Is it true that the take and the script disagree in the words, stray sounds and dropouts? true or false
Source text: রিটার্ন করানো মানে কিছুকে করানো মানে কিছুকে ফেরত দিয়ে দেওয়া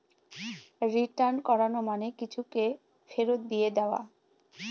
true